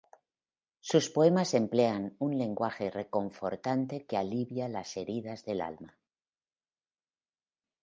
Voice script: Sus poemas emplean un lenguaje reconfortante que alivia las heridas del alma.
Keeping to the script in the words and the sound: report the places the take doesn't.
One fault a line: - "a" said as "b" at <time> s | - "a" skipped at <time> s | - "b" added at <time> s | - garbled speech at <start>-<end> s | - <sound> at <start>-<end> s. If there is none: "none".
none